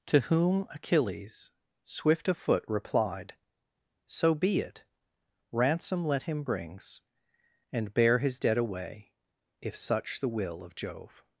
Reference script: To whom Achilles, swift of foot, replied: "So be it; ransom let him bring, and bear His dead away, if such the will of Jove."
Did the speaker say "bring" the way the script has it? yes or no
no